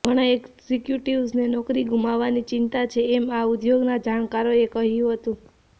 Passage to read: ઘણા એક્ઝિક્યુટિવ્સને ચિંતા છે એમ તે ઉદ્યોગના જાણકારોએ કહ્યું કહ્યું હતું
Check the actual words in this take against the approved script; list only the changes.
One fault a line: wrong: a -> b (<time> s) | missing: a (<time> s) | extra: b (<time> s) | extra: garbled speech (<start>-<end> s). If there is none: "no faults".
extra: નોકરી ગુમાવવાની (1.5 s)
wrong: તે -> આ (3.3 s)
missing: કહ્યું (5.2 s)